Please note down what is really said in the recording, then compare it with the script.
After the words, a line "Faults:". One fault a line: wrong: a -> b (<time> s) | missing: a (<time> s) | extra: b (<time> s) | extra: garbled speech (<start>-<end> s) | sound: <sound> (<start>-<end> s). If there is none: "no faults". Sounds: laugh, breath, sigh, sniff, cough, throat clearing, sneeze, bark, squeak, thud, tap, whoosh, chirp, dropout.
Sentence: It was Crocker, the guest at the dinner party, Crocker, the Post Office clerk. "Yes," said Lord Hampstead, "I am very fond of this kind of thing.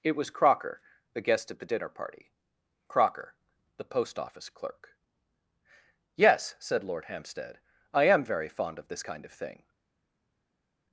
It was Crocker, the guest at the dinner party, Crocker, the Post Office clerk. "Yes," said Lord Hampstead, "I am very fond of this kind of thing.
Faults:
no faults